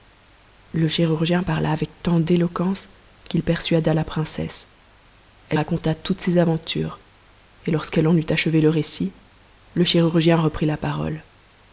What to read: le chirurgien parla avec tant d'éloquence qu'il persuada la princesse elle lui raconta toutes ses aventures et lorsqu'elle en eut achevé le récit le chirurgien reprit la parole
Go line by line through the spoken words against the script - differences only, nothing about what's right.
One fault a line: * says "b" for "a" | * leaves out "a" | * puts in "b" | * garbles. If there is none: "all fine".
* leaves out "lui"